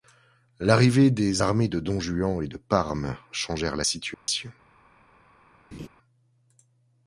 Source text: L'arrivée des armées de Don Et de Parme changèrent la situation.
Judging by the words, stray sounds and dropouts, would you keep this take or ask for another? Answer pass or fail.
fail